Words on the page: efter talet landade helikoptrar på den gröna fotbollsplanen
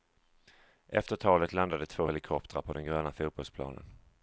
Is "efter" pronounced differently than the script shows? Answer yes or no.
no